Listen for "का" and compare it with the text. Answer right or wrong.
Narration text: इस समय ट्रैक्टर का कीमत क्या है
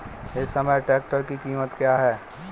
wrong